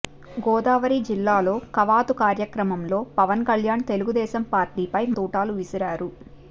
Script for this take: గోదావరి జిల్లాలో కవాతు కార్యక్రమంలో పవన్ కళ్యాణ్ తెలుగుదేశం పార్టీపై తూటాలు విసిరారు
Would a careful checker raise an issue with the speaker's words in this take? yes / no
no